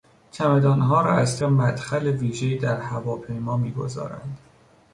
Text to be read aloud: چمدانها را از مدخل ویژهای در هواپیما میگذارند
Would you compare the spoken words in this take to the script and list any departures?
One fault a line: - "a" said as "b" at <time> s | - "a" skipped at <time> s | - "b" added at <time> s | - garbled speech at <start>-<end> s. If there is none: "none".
none